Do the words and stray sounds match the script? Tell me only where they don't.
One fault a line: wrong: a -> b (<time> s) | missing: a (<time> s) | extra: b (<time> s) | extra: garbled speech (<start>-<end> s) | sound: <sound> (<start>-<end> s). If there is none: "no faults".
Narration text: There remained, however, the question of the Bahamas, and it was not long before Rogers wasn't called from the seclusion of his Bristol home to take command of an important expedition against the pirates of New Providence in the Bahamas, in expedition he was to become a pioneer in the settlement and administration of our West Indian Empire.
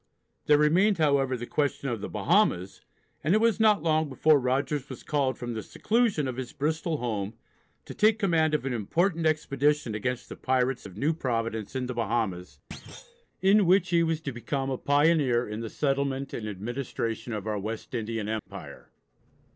wrong: wasn't -> was (4.9 s)
sound: thud (12.7-13.3 s)
wrong: expedition -> which (13.7 s)
sound: dropout (18.4-18.5 s)